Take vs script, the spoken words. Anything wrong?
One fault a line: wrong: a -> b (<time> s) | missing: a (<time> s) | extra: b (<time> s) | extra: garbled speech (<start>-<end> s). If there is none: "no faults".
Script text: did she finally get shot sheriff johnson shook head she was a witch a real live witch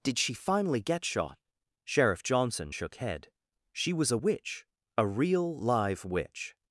no faults